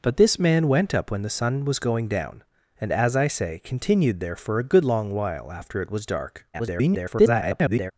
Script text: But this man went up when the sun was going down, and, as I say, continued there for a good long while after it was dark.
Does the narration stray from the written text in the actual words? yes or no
yes